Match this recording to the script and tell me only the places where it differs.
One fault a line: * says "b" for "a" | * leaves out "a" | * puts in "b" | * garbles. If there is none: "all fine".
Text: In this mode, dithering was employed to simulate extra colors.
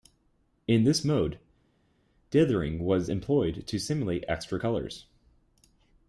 all fine